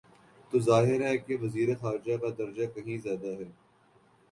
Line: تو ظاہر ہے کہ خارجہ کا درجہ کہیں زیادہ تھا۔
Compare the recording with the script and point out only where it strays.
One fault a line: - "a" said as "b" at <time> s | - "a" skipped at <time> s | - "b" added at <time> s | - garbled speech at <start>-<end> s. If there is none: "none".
- "وزیر" added at 1.4 s
- "تھا" said as "ہے" at 3.4 s